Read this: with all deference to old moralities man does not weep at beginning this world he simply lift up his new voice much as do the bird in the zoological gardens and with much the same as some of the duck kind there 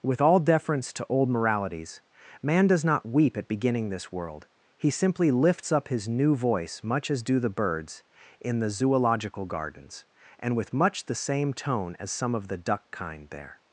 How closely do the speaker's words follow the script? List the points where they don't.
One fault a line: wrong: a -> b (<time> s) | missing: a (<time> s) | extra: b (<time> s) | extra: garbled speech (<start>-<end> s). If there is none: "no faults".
wrong: lift -> lifts (5.3 s)
wrong: bird -> birds (7.5 s)
extra: tone (11.5 s)